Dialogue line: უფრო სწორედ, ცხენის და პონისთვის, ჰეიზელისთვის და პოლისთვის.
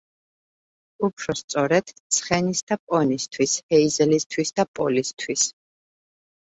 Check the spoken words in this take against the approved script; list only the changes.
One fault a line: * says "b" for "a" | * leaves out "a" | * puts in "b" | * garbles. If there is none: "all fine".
all fine